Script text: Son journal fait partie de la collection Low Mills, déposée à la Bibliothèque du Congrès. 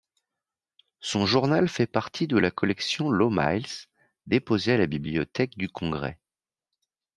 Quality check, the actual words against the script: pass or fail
pass